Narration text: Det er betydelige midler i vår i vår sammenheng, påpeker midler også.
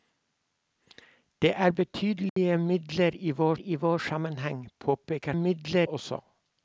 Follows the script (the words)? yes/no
yes